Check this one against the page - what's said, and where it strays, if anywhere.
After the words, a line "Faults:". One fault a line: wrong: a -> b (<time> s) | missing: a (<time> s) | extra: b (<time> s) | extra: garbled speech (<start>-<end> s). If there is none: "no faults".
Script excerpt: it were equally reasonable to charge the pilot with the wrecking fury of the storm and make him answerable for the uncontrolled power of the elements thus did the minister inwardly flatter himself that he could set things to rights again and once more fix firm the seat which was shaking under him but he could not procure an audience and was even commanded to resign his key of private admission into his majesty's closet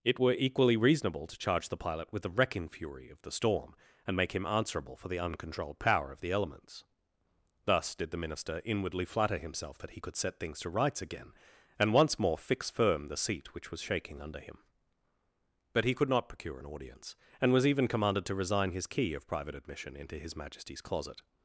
it were equally reasonable to charge the pilot with the wrecking fury of the storm and make him answerable for the uncontrolled power of the elements thus did the minister inwardly flatter himself that he could set things to rights again and once more fix firm the seat which was shaking under him but he could not procure an audience and was even commanded to resign his key of private admission into his majesty's closet
Faults:
no faults